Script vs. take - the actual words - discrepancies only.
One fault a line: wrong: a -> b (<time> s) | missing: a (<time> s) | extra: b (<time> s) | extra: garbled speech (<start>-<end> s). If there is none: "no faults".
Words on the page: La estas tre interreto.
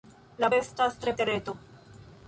no faults